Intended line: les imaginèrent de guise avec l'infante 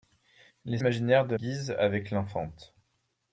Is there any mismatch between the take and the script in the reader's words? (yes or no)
no